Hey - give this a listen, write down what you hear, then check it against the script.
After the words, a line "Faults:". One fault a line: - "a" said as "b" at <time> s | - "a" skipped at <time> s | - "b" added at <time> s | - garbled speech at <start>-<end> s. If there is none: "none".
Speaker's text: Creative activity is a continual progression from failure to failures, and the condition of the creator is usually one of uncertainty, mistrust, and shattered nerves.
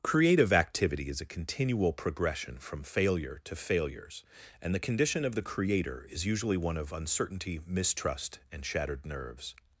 Creative activity is a continual progression from failure to failures, and the condition of the creator is usually one of uncertainty, mistrust, and shattered nerves.
Faults:
none